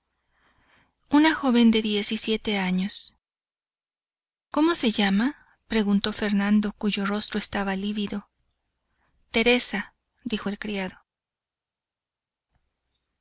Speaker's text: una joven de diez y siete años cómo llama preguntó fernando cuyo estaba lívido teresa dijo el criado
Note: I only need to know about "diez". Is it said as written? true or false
true